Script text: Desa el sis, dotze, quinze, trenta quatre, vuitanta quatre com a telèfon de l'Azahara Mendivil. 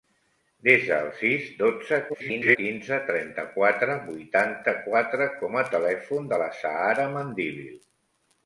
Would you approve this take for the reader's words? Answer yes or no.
no